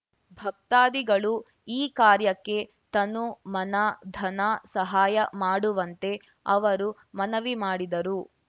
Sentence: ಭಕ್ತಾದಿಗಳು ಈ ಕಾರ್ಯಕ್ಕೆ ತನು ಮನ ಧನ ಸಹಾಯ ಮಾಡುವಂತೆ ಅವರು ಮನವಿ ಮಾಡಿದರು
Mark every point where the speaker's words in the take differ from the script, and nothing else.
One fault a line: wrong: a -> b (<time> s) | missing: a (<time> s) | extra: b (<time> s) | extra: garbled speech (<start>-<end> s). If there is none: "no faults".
no faults